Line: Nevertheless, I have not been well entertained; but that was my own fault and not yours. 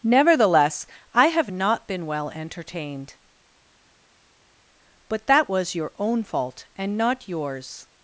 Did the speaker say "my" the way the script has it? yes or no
no